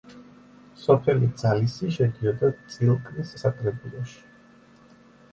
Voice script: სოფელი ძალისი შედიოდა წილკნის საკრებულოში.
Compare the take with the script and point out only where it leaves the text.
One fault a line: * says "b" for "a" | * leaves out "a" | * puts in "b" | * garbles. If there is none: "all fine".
all fine